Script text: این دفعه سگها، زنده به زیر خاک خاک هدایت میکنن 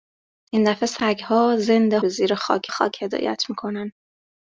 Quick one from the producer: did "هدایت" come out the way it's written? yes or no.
yes